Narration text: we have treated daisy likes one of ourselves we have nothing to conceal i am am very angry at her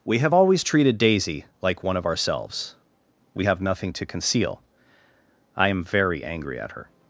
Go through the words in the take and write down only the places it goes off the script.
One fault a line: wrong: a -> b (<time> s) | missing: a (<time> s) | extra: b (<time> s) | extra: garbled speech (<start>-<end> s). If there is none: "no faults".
extra: always (0.3 s)
wrong: likes -> like (1.6 s)
missing: am (5.8 s)